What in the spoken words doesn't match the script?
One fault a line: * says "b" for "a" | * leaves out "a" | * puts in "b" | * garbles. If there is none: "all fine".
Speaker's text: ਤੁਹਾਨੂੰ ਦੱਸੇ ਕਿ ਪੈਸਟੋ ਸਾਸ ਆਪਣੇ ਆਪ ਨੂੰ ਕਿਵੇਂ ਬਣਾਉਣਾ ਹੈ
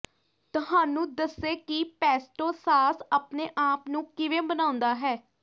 all fine